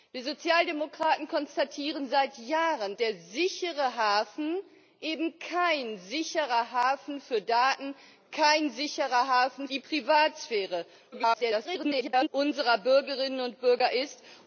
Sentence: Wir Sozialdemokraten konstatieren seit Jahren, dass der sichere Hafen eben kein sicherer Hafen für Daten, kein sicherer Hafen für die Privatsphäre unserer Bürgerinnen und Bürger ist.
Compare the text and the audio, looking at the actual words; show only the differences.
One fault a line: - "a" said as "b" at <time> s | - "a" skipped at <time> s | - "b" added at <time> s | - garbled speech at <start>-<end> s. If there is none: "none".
- "dass" skipped at 3.0 s
- "für" skipped at 9.7 s
- garbled speech at 11.1-12.3 s